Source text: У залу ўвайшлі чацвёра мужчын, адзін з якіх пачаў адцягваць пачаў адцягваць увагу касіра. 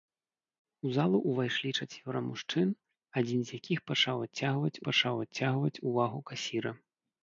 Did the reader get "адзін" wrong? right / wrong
right